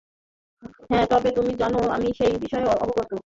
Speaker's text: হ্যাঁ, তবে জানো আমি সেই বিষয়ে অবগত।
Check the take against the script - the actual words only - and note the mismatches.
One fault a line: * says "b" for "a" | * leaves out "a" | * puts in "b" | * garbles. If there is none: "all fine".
* puts in "তুমি"